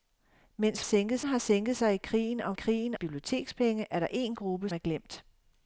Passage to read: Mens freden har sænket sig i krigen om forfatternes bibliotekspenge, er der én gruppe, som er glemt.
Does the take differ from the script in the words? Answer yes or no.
yes